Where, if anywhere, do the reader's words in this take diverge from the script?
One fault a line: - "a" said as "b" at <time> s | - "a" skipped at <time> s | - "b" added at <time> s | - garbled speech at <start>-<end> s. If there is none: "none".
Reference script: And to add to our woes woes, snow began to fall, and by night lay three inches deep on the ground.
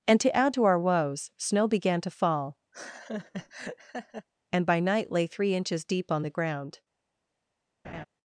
- "woes" skipped at 1.3 s